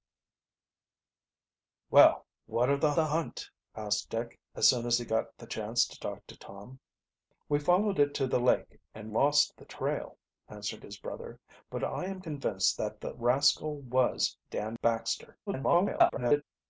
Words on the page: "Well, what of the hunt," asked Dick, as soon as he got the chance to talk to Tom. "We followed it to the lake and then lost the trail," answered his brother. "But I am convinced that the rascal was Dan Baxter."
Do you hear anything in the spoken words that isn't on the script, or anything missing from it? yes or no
yes